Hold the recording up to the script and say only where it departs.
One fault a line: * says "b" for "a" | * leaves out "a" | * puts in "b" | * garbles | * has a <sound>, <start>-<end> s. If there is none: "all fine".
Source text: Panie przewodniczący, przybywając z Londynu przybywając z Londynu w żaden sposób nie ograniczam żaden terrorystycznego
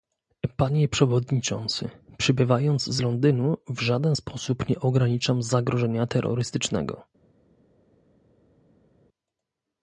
* leaves out "przybywając z Londynu"
* says "zagrożenia" for "żaden"